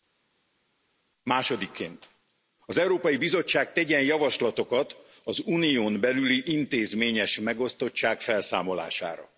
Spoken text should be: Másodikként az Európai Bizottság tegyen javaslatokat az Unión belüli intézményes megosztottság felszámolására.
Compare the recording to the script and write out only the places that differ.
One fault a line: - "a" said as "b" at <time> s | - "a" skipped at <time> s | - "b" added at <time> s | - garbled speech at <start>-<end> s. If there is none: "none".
none